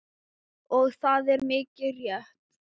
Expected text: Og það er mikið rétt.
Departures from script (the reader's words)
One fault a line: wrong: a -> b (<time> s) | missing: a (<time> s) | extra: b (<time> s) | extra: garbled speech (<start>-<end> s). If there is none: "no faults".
no faults